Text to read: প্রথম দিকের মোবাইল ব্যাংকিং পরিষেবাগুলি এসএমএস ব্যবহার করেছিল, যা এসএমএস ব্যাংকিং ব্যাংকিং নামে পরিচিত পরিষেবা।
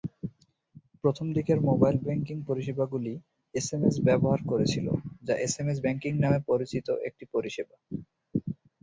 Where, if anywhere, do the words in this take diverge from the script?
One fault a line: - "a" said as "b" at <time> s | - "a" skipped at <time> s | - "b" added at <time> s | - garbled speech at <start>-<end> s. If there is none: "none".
- "ব্যাংকিং" skipped at 6.1 s
- "একটি" added at 7.1 s